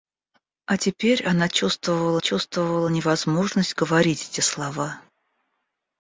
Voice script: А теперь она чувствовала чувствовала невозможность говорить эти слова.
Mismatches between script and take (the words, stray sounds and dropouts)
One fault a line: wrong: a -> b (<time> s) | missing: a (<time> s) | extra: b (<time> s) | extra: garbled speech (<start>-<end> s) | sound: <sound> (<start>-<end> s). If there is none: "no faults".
no faults